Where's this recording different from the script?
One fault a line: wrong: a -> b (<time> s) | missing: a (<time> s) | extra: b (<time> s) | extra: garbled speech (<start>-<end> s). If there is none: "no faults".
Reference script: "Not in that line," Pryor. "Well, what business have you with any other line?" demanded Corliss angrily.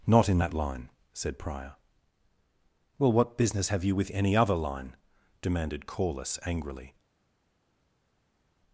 extra: said (1.1 s)